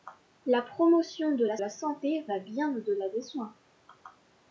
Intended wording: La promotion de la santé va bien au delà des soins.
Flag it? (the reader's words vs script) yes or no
yes